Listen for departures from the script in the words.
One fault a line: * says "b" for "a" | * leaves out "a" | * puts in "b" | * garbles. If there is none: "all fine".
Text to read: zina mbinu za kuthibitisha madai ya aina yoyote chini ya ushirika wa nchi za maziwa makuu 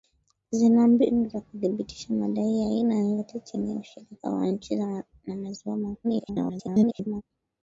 * garbles